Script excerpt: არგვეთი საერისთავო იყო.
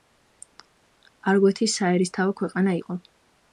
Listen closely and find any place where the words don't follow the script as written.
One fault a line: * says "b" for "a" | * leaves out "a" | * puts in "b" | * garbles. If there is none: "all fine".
* puts in "ქვეყანა"